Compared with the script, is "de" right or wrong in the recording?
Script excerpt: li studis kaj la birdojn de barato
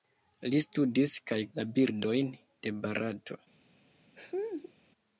right